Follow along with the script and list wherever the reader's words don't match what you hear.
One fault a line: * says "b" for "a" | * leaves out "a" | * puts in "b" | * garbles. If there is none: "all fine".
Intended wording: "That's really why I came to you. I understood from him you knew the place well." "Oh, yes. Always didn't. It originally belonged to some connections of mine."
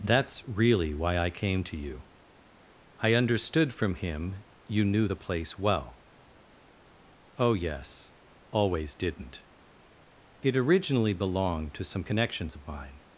all fine